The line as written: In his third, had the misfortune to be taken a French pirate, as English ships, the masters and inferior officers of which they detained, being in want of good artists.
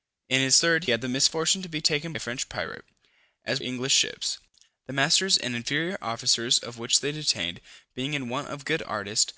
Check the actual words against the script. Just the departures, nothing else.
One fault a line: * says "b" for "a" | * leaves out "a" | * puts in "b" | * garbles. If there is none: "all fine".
all fine